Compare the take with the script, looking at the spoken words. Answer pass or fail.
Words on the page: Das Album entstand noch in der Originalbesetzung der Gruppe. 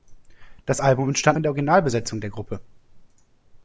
fail